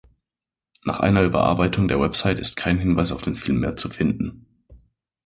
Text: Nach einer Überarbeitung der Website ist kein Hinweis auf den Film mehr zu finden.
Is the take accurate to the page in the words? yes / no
yes